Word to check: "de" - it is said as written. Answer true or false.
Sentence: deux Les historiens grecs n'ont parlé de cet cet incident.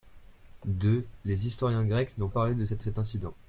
true